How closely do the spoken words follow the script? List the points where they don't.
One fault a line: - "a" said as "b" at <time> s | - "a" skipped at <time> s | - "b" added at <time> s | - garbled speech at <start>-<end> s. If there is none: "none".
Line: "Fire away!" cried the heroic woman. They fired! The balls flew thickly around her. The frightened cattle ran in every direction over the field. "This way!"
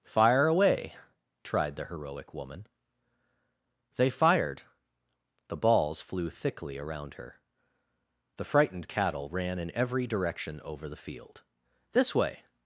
- "cried" said as "tried" at 1.4 s